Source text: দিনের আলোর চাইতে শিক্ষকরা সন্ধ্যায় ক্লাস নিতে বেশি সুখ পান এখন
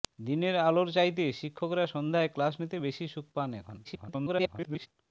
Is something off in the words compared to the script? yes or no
yes